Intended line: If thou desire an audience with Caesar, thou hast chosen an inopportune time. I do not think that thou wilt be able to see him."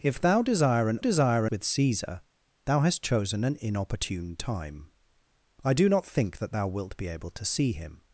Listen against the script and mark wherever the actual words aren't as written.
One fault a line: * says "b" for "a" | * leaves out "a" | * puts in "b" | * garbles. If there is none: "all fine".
* says "desire" for "audience"